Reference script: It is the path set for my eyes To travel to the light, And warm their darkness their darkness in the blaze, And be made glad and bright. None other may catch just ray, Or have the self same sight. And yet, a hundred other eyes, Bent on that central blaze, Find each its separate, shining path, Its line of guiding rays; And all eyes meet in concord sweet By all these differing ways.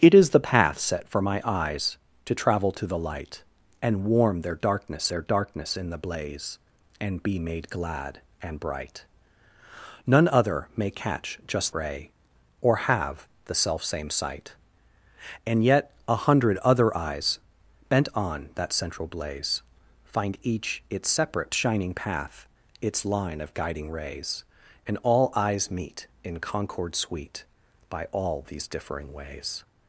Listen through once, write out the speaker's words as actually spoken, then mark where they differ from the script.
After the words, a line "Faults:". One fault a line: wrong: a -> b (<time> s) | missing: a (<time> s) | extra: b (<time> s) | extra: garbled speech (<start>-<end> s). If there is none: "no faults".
It is the path set for my eyes To travel to the light, And warm their darkness their darkness in the blaze, And be made glad and bright. None other may catch just ray, Or have the self same sight. And yet, a hundred other eyes, Bent on that central blaze, Find each its separate, shining path, Its line of guiding rays; And all eyes meet in concord sweet By all these differing ways.
Faults:
no faults